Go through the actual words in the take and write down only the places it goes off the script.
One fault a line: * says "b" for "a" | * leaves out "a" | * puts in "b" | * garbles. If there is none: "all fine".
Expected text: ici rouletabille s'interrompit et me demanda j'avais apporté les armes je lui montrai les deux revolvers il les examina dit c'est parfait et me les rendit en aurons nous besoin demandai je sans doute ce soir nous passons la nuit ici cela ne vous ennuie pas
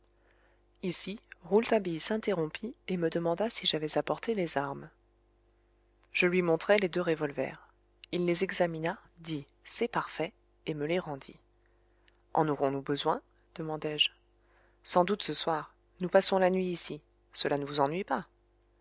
* puts in "si"